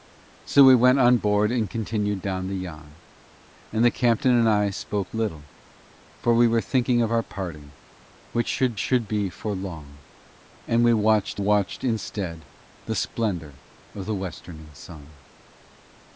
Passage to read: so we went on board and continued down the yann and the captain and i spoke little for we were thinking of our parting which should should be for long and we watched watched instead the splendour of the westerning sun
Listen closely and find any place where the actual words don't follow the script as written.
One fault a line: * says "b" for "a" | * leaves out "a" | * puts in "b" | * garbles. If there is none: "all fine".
all fine